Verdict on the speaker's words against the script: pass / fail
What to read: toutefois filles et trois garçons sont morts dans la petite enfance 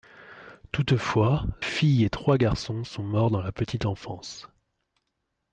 pass